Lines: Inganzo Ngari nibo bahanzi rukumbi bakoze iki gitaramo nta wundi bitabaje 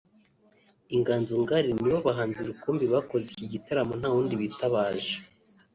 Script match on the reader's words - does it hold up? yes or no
yes